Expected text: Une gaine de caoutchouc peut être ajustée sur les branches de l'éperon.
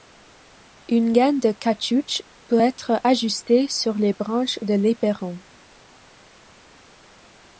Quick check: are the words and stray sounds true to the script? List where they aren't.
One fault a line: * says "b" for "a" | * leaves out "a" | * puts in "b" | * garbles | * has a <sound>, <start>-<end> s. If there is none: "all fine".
all fine